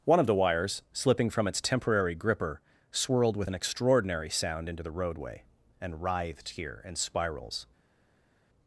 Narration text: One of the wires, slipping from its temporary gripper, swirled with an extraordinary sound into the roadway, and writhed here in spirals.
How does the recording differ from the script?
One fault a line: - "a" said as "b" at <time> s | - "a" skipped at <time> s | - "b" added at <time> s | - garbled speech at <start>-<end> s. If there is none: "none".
none